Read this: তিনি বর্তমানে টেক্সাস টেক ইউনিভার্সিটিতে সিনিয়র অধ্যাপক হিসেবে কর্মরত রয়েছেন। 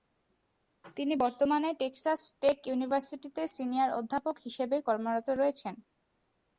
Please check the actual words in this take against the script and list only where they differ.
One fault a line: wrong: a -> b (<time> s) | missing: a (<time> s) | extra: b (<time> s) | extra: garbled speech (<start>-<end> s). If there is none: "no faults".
no faults